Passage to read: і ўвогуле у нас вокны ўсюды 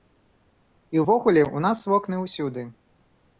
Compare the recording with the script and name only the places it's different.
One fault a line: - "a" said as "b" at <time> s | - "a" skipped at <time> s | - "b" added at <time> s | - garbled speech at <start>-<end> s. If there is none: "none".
none